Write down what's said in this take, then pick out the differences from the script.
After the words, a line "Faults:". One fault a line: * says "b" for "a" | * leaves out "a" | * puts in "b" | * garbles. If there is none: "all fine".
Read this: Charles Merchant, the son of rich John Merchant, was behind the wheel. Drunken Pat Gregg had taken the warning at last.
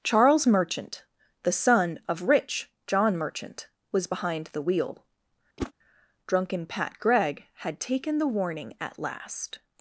Charles Merchant, the son of rich John Merchant, was behind the wheel. Drunken Pat Gregg had taken the warning at last.
Faults:
all fine